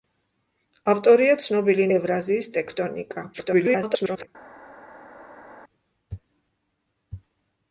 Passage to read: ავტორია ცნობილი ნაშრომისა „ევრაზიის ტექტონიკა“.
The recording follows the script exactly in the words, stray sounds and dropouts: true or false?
false